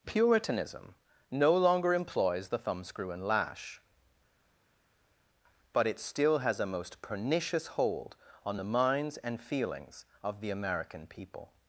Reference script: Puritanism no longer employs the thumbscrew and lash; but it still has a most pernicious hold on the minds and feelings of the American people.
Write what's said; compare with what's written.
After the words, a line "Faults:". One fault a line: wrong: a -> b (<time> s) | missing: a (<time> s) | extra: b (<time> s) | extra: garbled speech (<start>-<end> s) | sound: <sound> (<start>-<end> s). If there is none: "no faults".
Puritanism no longer employs the thumbscrew and lash; but it still has a most pernicious hold on the minds and feelings of the American people.
Faults:
no faults